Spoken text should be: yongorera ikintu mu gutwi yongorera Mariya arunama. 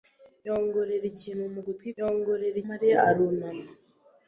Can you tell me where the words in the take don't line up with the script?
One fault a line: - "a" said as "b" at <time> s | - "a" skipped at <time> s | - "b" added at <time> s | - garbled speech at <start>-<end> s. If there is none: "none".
none